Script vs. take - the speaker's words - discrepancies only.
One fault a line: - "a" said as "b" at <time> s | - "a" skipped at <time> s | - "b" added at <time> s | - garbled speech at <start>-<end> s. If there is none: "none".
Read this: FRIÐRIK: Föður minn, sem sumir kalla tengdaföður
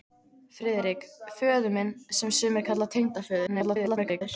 - garbled speech at 3.5-4.2 s